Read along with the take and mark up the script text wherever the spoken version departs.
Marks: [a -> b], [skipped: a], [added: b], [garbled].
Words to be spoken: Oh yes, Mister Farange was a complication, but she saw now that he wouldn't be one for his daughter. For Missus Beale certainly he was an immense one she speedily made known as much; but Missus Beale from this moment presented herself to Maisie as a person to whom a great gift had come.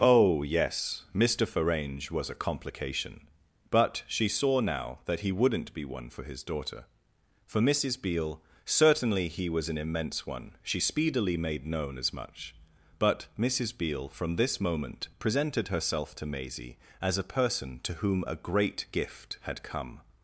Oh yes, Mister Farange was a complication, but she saw now that he wouldn't be one for his daughter. For Missus Beale certainly he was an immense one she speedily made known as much; but Missus Beale from this moment presented herself to Maisie as a person to whom a great gift had come.